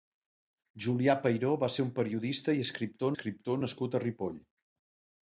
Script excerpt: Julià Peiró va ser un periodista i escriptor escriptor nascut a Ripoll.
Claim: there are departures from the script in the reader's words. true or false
false